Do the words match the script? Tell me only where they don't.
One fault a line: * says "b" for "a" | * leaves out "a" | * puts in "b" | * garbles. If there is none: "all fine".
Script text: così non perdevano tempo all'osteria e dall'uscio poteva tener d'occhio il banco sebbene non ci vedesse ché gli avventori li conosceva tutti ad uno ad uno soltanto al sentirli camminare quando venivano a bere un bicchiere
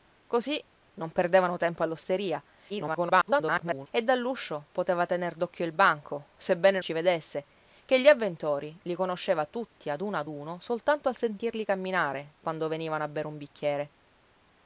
* garbles
* leaves out "non"